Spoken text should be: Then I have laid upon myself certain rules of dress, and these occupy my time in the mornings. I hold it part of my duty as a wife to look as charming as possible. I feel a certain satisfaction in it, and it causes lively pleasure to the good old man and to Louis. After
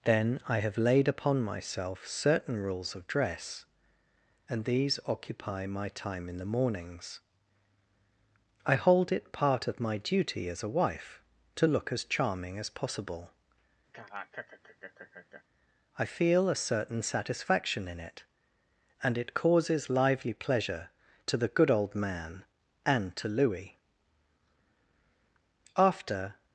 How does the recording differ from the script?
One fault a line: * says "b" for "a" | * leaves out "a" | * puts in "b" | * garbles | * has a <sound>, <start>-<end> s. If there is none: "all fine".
* has a laugh, 13.9-15.4 s